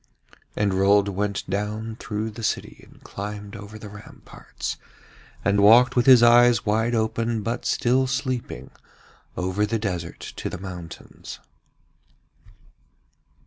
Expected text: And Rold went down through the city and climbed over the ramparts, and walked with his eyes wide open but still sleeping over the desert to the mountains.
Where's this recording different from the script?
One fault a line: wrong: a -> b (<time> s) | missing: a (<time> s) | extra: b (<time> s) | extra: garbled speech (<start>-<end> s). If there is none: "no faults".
no faults